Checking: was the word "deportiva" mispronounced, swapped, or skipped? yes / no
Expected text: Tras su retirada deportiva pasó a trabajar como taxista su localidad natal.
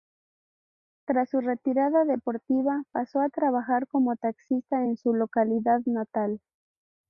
no